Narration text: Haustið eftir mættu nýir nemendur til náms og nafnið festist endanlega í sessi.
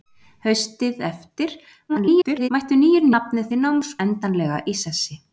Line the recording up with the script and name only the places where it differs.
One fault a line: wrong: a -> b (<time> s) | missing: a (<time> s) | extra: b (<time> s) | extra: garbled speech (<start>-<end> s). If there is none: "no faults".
extra: garbled speech (1.9-2.5 s)
wrong: nemendur -> nafnið (3.1 s)
missing: og nafnið festist (3.9 s)